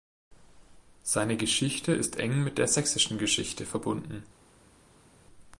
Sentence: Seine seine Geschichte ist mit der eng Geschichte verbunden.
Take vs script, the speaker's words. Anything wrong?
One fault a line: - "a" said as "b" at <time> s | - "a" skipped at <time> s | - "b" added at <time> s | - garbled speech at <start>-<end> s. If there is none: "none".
- "seine" skipped at 1.4 s
- "eng" added at 2.2 s
- "eng" said as "sächsischen" at 2.7 s